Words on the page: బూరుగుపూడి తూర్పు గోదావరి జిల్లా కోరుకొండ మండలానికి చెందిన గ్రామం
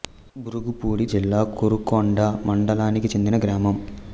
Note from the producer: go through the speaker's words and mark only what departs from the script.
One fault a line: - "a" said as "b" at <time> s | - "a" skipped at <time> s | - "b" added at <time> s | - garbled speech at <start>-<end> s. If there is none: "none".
- "తూర్పు గోదావరి" skipped at 1.1 s